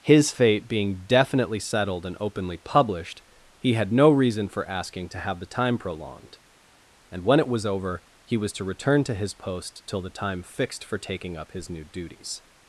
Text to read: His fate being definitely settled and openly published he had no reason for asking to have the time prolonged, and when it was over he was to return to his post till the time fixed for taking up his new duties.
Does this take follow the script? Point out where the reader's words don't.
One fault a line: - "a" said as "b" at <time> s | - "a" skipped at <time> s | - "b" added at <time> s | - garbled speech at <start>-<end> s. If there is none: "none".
none